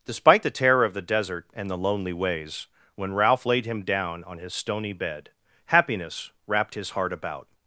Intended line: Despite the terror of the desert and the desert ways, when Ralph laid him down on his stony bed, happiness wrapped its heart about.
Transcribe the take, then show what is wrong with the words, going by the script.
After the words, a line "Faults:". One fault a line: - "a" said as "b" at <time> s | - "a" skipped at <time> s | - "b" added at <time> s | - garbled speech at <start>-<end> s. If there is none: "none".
Despite the terror of the desert and the lonely ways, when Ralph laid him down on his stony bed, happiness wrapped his heart about.
Faults:
- "desert" said as "lonely" at 1.8 s
- "its" said as "his" at 6.8 s